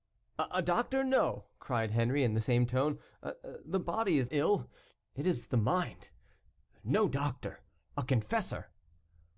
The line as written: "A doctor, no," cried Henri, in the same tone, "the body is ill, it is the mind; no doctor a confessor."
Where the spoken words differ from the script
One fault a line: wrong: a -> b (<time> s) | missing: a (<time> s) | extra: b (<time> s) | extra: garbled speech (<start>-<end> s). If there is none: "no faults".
no faults